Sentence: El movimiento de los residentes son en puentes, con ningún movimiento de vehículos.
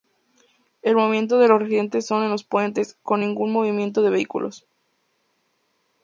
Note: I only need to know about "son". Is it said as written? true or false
true